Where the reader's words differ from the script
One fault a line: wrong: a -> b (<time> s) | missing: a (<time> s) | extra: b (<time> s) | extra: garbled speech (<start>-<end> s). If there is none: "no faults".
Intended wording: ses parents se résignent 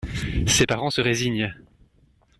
no faults